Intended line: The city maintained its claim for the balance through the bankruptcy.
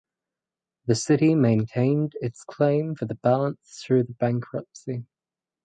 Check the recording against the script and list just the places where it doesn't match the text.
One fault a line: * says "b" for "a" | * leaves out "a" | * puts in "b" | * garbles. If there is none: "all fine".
all fine